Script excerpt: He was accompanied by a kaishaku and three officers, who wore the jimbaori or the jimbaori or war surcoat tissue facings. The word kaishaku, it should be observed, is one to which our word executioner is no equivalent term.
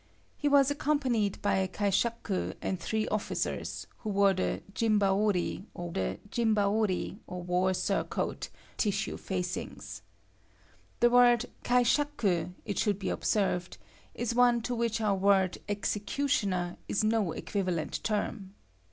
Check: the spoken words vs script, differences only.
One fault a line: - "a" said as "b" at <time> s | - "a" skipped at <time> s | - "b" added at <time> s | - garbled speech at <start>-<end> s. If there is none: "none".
none